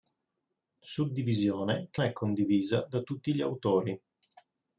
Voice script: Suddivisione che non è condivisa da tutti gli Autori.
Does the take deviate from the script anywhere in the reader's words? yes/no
yes